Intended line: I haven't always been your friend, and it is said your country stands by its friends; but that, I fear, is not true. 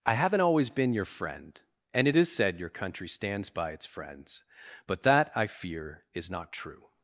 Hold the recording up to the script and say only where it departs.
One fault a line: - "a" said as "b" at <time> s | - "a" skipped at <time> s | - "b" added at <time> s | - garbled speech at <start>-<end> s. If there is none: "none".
none